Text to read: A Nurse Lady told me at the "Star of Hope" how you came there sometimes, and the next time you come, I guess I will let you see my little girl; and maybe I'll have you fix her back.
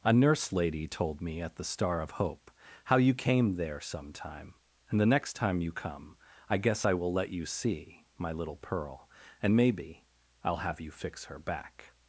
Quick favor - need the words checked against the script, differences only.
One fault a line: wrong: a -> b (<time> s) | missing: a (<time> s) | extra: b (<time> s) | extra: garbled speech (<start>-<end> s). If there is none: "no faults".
wrong: sometimes -> sometime (3.8 s)
wrong: girl -> pearl (8.6 s)